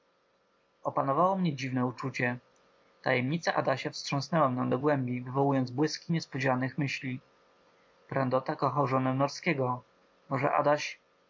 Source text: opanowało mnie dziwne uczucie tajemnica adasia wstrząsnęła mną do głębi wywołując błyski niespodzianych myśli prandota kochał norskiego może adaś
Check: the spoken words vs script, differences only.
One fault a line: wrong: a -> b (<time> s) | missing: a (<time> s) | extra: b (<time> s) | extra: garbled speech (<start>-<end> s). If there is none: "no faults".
extra: żonę (8.9 s)